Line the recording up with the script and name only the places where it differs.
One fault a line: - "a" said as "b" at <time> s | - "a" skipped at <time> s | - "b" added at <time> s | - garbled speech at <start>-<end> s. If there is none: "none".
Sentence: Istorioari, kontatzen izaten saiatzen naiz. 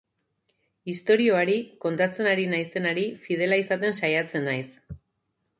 - "ari naizenari fidela" added at 2.3 s